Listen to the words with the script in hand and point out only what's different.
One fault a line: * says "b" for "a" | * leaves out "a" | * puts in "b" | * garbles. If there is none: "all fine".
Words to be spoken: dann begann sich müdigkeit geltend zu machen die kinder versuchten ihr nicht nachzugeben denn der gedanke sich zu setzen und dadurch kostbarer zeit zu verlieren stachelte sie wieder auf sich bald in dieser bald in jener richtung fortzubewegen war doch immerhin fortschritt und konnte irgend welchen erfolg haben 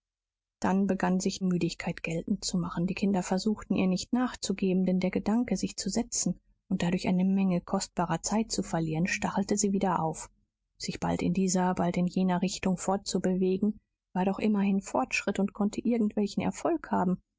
* puts in "eine menge"